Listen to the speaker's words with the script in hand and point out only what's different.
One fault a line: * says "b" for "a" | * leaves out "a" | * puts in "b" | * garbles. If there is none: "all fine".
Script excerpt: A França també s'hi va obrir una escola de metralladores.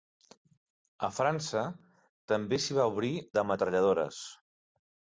* leaves out "una escola"